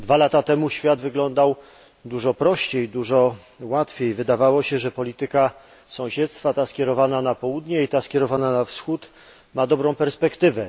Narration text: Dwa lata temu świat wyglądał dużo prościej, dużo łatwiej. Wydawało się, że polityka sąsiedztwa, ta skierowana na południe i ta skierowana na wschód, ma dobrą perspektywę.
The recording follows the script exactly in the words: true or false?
true